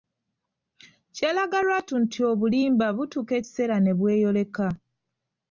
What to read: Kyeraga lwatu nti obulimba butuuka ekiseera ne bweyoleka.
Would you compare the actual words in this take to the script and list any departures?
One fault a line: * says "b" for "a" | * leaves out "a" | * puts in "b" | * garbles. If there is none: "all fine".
all fine